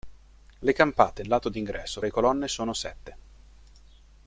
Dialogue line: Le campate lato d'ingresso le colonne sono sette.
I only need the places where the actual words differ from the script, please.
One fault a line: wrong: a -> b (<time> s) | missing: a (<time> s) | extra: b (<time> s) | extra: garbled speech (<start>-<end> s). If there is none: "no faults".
no faults